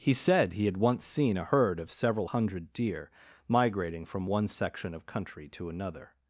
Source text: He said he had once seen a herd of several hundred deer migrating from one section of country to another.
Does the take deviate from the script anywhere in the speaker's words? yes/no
no